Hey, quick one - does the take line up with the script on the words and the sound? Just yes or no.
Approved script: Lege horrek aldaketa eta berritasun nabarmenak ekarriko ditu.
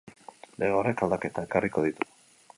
no